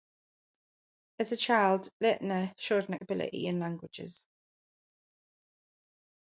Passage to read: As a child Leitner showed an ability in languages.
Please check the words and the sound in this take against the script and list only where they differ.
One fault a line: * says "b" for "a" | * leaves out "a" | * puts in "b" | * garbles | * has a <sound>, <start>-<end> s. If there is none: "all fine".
all fine